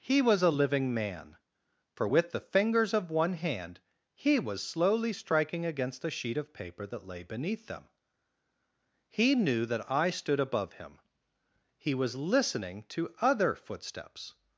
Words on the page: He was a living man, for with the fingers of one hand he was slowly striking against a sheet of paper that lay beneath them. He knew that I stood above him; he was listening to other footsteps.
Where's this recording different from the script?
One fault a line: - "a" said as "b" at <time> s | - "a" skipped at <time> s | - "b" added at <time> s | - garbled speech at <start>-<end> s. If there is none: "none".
none